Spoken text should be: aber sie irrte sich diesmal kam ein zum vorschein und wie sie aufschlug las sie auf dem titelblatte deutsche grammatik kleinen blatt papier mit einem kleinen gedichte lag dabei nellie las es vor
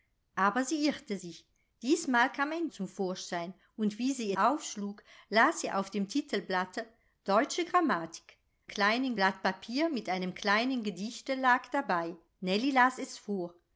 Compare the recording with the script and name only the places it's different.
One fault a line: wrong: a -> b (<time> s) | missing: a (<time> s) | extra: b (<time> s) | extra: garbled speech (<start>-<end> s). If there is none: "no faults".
no faults